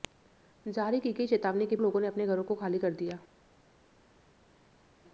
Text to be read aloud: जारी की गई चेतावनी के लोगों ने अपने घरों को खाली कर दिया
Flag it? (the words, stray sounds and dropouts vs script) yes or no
no